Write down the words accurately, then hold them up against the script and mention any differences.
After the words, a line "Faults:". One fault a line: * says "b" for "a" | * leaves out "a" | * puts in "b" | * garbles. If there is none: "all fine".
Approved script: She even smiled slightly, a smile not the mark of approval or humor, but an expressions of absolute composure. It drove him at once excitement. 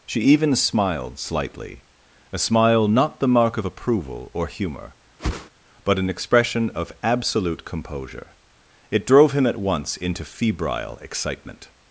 She even smiled slightly, a smile not the mark of approval or humor, but an expression of absolute composure. It drove him at once into febrile excitement.
Faults:
* says "expression" for "expressions"
* puts in "into febrile"